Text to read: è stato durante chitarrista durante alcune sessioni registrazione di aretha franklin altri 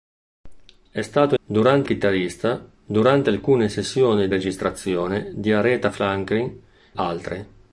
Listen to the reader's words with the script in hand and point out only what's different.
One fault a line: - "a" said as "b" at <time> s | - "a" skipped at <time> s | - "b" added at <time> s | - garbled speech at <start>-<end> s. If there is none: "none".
none